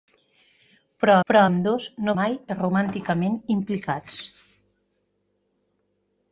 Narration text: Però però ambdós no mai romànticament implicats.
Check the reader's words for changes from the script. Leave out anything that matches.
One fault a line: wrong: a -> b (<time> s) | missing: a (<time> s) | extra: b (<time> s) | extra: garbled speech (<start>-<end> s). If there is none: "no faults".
no faults